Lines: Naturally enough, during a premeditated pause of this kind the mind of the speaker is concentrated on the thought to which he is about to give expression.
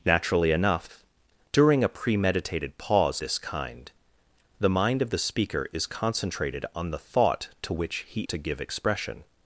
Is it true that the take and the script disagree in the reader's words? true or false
true